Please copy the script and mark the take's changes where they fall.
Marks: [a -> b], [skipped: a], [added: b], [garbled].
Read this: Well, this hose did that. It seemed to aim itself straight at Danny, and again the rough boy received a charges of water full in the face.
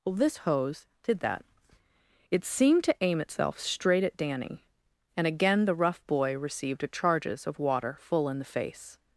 Well, this hose did that. It seemed to aim itself straight at Danny, and again the rough boy received a charges of water full in the face.